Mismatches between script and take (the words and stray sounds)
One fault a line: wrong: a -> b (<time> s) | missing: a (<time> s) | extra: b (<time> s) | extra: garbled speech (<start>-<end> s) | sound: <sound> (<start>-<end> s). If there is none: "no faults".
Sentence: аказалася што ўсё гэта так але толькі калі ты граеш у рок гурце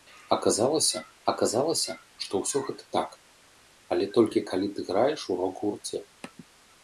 extra: аказалася (1.3 s)